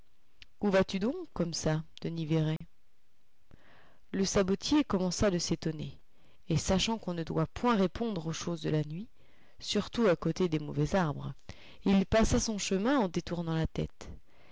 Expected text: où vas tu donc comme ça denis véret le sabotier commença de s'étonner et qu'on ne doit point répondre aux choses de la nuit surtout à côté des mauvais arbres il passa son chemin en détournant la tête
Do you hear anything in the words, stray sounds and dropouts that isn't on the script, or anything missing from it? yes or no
yes